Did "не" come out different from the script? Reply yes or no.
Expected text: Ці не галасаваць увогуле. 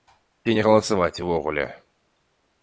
no